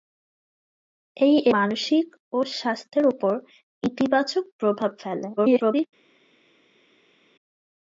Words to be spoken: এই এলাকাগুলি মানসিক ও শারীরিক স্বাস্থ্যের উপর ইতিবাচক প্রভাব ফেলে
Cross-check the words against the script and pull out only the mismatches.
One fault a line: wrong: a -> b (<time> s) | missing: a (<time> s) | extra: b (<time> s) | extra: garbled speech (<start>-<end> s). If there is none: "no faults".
missing: এলাকাগুলি (1.4 s)
missing: শারীরিক (2.4 s)
extra: garbled speech (5.4-5.9 s)